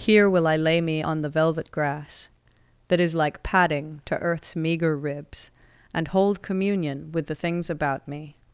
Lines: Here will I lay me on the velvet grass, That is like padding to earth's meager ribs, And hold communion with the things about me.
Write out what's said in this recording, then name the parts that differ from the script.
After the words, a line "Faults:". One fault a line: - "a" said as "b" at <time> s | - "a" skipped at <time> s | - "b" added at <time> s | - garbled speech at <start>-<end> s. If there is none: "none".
Here will I lay me on the velvet grass, That is like padding to earth's meager ribs, And hold communion with the things about me.
Faults:
none